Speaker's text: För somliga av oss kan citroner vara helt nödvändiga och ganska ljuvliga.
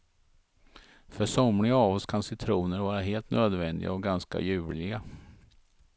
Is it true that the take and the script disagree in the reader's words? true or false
false